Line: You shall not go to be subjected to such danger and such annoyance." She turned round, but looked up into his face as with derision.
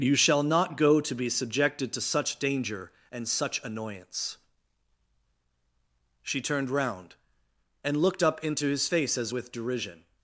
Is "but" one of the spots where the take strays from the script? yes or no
yes